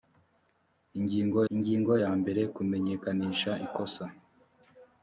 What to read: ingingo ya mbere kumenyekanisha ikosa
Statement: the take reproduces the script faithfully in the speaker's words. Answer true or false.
false